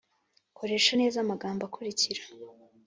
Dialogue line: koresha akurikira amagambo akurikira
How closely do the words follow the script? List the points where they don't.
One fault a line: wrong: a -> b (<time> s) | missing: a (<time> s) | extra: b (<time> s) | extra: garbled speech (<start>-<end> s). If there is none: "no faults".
wrong: akurikira -> neza (1.0 s)